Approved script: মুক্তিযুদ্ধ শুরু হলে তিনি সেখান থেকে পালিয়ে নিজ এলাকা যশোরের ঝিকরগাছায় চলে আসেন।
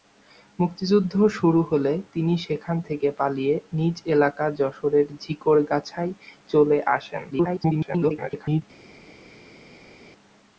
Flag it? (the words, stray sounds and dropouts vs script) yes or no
yes